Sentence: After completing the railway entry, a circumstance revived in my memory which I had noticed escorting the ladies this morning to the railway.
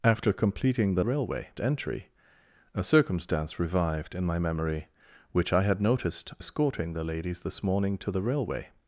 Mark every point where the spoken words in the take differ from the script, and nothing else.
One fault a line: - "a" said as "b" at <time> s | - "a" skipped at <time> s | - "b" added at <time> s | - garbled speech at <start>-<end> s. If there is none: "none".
none